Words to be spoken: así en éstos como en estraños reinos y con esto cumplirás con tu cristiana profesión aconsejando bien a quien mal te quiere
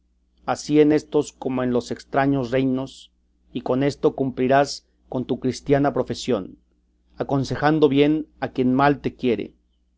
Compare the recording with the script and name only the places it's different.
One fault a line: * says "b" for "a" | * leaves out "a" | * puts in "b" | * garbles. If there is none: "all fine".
* puts in "los"